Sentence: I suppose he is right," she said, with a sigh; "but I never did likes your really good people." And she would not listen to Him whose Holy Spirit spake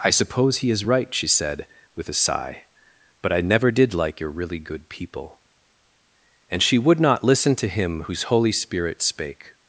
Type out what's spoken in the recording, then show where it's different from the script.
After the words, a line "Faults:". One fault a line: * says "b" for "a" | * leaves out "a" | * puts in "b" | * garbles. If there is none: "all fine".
I suppose he is right," she said, with a sigh; "but I never did like your really good people." And she would not listen to Him whose Holy Spirit spake
Faults:
* says "like" for "likes"